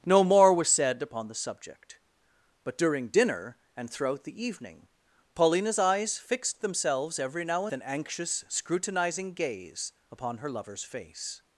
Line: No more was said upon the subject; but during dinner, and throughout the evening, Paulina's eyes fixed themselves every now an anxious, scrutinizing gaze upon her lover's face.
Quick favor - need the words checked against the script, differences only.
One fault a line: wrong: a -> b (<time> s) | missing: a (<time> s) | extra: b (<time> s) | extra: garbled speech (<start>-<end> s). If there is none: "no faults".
no faults